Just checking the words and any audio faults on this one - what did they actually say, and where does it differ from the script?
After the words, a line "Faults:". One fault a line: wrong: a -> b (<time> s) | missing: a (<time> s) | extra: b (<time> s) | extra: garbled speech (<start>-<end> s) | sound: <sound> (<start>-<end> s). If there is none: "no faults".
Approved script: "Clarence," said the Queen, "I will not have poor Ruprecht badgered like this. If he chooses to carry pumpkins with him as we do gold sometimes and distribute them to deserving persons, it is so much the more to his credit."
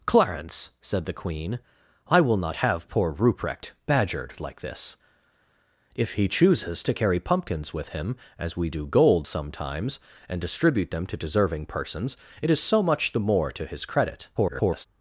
"Clarence," said the Queen, "I will not have poor Ruprecht badgered like this. If he chooses to carry pumpkins with him as we do gold sometimes and distribute them to deserving persons, it is so much the more to his credit." [garbled]
Faults:
extra: garbled speech (14.4-14.9 s)